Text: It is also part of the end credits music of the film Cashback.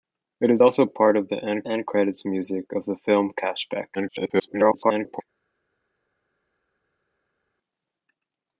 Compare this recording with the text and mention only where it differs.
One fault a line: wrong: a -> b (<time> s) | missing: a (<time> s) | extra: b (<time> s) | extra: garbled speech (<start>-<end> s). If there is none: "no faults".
extra: end (1.7 s)
extra: garbled speech (3.9-5.2 s)